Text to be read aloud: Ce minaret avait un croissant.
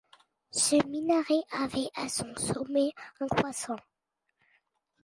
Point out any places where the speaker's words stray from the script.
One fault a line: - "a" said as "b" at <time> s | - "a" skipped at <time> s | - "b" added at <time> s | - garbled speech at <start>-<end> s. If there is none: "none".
- "à son sommet" added at 1.9 s